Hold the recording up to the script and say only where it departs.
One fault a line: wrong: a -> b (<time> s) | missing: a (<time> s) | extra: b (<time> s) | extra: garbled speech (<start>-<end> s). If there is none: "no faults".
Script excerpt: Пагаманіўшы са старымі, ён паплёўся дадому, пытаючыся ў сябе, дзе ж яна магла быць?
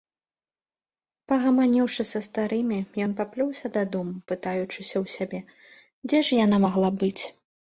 no faults